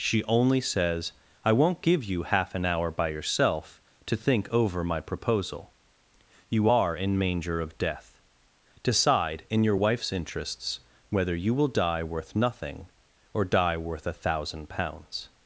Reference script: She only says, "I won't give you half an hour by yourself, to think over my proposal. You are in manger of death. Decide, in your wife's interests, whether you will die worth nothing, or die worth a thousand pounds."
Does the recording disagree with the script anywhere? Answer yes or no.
no